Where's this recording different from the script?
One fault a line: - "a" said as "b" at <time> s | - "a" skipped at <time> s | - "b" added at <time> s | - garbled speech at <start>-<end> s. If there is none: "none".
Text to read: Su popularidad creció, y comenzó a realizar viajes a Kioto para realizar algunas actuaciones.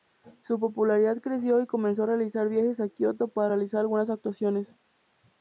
none